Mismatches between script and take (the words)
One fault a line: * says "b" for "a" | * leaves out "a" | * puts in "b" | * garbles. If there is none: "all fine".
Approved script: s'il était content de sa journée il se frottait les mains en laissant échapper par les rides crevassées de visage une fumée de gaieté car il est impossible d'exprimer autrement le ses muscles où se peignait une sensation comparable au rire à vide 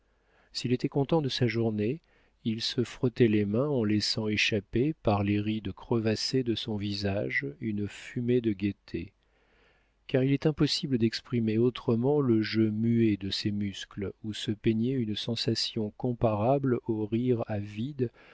* puts in "son"
* puts in "jeu muet de"